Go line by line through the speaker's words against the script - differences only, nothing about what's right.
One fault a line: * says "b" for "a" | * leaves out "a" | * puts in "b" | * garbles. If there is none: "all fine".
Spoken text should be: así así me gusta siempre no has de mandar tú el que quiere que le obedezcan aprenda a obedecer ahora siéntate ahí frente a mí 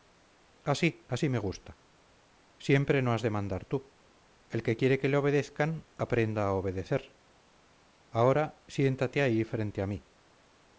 all fine